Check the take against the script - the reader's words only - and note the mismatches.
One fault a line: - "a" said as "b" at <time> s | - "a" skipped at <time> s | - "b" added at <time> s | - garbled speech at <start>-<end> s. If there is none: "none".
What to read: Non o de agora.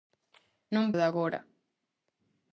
none